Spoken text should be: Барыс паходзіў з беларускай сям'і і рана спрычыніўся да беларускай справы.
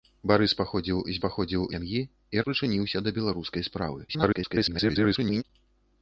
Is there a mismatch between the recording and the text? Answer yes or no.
yes